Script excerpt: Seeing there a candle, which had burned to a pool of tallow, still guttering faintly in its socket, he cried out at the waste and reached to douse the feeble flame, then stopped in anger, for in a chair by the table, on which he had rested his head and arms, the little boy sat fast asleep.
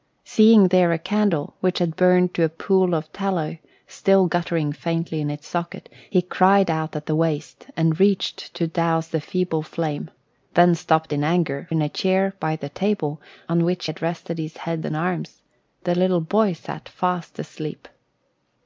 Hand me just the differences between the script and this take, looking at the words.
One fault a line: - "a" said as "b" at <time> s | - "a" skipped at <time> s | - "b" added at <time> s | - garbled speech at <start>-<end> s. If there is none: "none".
- "for" skipped at 11.7 s
- "he" skipped at 13.9 s